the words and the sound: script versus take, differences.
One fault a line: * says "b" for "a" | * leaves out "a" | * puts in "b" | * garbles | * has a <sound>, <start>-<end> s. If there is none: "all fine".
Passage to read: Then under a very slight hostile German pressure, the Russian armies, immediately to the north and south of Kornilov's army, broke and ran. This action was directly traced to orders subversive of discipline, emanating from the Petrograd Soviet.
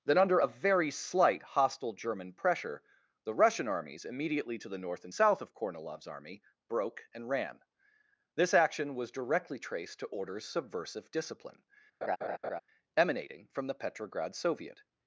* leaves out "of"
* has a laugh, 12.0-12.6 s